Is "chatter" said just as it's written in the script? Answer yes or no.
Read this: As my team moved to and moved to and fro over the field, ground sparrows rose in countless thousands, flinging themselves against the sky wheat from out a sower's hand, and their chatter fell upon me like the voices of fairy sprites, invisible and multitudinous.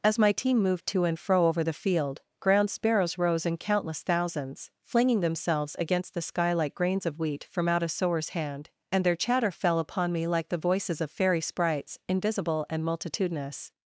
yes